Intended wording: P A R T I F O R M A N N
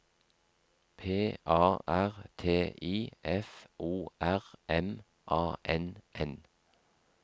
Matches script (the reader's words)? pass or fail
pass